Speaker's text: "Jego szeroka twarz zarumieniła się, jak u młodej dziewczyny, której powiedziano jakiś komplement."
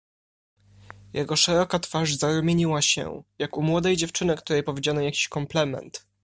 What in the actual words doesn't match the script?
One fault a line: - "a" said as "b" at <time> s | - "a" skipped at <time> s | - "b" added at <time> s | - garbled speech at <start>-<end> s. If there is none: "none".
none